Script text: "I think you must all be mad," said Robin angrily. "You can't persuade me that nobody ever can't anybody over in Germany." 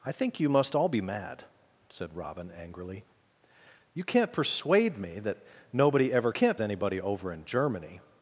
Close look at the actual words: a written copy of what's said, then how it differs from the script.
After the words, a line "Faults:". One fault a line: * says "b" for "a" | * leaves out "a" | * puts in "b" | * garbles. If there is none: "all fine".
"I think you must all be mad," said Robin angrily. "You can't persuade me that nobody ever can't anybody over in Germany."
Faults:
all fine